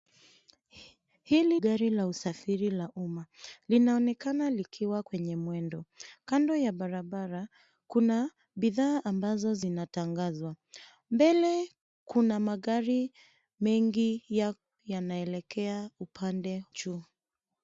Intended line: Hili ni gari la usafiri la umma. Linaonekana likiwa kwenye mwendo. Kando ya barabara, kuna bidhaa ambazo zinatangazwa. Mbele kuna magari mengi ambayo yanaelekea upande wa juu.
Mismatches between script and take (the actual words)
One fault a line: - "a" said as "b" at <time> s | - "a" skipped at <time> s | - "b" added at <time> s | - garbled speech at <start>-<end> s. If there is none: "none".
- "ni" skipped at 1.6 s
- "ambayo" skipped at 14.3 s
- "wa" skipped at 16.6 s